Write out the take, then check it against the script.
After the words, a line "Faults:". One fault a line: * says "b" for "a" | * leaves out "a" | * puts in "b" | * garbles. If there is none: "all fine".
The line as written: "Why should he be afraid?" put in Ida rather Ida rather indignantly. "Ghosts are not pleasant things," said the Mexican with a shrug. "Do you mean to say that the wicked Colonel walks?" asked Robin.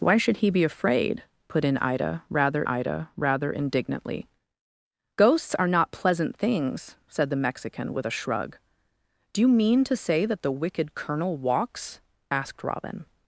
"Why should he be afraid?" put in Ida rather Ida rather indignantly. "Ghosts are not pleasant things," said the Mexican with a shrug. "Do you mean to say that the wicked Colonel walks?" asked Robin.
Faults:
all fine